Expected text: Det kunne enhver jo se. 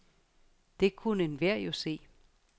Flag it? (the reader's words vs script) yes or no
no